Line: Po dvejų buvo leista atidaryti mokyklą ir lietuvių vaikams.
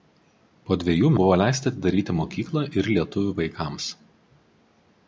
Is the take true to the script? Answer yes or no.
yes